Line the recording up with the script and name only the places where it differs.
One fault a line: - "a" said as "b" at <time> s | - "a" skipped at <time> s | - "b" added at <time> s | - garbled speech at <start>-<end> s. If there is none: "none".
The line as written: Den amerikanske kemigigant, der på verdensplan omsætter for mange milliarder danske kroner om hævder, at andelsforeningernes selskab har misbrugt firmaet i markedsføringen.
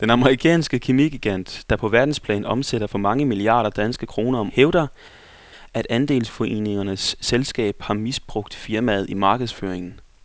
none